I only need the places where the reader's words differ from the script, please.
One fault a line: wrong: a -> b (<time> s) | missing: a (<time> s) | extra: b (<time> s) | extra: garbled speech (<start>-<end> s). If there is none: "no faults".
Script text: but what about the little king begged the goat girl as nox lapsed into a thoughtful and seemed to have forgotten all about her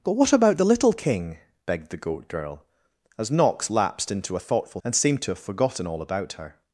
no faults